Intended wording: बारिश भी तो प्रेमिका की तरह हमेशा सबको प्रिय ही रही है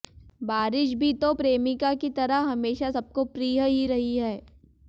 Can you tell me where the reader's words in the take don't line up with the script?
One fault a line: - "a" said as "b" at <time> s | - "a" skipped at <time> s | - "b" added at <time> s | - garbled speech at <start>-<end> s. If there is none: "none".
none